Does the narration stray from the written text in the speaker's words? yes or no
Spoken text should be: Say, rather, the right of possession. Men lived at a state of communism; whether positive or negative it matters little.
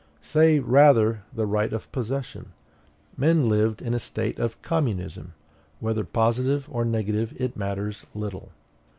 yes